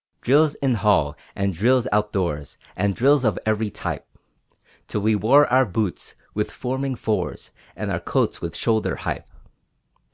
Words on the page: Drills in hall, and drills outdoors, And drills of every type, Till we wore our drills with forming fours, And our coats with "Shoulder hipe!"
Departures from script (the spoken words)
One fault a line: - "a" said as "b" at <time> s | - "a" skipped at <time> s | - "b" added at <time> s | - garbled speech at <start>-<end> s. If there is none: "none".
- "drills" said as "boots" at 5.6 s